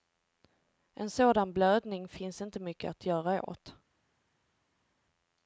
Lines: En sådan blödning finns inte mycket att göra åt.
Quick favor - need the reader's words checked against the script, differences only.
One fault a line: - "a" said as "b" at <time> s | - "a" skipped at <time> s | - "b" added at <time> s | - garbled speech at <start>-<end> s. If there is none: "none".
none